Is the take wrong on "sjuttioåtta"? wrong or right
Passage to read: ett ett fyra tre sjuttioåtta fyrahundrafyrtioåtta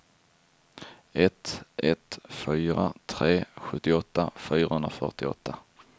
right